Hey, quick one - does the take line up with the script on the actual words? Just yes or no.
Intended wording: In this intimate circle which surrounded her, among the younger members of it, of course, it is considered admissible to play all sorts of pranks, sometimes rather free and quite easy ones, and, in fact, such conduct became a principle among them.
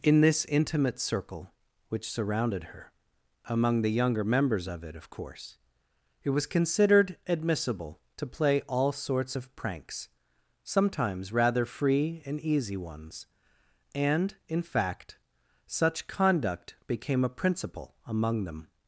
no